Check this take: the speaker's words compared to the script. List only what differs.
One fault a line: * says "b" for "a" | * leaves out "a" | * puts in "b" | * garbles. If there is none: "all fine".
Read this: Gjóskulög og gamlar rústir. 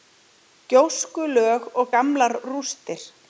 all fine